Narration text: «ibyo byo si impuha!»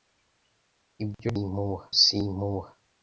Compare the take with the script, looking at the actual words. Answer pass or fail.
fail